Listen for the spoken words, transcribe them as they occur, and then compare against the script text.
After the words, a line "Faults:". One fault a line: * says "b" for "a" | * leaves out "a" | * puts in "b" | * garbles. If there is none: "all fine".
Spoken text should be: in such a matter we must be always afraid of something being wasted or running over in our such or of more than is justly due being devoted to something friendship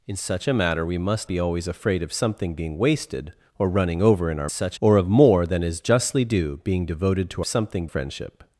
in such a matter we must be always afraid of something being wasted or running over in our such or of more than is justly due being devoted to something friendship
Faults:
all fine